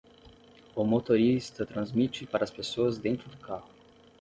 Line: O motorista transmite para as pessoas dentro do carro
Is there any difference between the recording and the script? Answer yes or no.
no